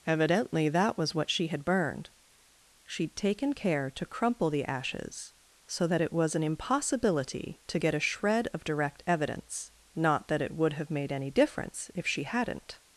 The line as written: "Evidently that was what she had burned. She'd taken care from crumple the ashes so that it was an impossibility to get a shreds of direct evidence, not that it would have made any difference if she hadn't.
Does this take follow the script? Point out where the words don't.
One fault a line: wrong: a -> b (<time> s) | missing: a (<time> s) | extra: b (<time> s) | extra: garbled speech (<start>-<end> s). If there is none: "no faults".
wrong: from -> to (3.9 s)
wrong: shreds -> shred (8.0 s)